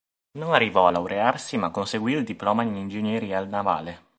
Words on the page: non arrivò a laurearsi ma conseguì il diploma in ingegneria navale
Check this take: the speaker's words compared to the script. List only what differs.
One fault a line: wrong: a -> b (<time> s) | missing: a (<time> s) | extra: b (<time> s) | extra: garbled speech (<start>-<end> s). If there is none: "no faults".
no faults